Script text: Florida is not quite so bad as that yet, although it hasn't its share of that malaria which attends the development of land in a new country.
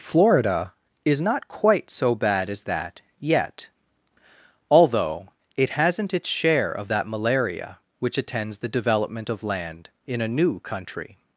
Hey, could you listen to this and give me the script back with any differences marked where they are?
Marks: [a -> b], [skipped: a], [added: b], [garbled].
Florida is not quite so bad as that yet, although it hasn't its share of that malaria which attends the development of land in a new country.